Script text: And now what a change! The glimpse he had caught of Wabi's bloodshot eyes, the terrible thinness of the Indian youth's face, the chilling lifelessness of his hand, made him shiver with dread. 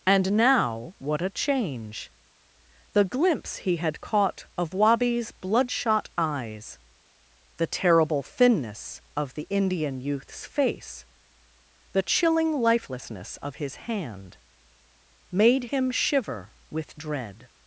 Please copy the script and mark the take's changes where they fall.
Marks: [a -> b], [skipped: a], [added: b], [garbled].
And now what a change! The glimpse he had caught of Wabi's bloodshot eyes, the terrible thinness of the Indian youth's face, the chilling lifelessness of his hand, made him shiver with dread.